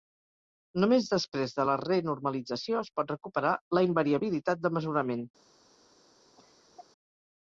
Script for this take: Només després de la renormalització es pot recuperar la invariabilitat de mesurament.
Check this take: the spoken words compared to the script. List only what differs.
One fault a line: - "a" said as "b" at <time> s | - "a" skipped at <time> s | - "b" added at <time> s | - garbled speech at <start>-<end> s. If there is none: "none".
none